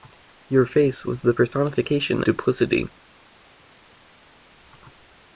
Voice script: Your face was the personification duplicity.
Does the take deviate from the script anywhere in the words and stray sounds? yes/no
no